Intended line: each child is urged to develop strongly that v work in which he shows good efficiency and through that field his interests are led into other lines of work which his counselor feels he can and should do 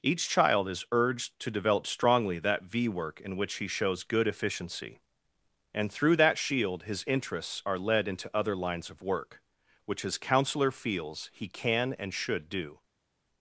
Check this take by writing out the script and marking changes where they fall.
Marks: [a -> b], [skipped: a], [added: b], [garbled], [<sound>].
each child is urged to develop strongly that v work in which he shows good efficiency and through that [field -> shield] his interests are led into other lines of work which his counselor feels he can and should do